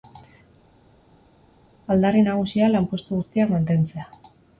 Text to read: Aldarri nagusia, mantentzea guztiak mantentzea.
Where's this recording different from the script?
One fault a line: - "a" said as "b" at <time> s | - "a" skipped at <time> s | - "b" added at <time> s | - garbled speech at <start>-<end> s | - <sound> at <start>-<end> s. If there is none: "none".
- "mantentzea" said as "lanpostu" at 2.8 s